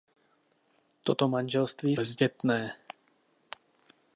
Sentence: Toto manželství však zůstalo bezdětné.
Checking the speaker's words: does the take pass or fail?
fail